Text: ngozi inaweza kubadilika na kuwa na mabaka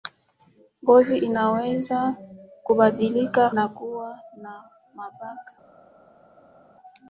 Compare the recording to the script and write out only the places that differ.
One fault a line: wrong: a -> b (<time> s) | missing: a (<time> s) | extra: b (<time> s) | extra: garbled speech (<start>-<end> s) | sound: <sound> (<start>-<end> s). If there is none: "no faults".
no faults